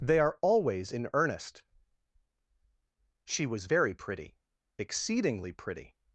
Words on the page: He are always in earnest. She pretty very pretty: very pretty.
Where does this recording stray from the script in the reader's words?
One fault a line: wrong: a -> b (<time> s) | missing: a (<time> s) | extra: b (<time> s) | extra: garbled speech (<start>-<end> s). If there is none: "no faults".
wrong: He -> They (0.0 s)
wrong: pretty -> was (3.5 s)
wrong: very -> exceedingly (4.8 s)